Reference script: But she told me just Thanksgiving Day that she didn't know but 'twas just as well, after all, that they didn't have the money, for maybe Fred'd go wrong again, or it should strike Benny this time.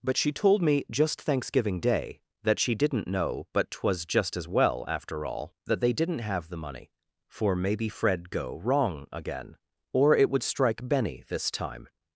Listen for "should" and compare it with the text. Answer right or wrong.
wrong